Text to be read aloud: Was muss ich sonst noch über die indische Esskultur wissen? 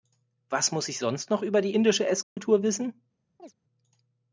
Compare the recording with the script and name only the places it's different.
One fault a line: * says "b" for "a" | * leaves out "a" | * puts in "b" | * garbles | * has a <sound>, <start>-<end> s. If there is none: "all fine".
* has a dropout, 2.2-2.4 s
* has a chirp, 3.4-3.5 s